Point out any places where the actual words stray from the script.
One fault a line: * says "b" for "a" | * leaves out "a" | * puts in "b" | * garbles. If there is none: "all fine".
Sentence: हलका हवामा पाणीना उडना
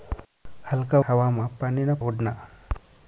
all fine